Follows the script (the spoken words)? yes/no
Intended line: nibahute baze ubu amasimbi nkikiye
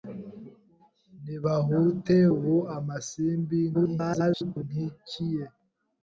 no